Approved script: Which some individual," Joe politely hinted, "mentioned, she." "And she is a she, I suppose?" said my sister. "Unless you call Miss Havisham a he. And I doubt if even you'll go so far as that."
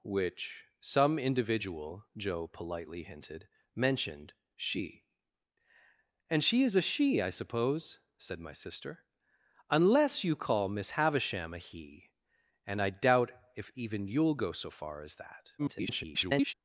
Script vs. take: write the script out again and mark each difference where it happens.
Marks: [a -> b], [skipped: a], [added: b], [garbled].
Which some individual," Joe politely hinted, "mentioned, she." "And she is a she, I suppose?" said my sister. "Unless you call Miss Havisham a he. And I doubt if even you'll go so far as that." [garbled]